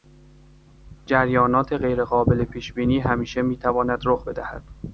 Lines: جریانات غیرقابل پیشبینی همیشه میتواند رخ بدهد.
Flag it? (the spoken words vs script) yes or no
no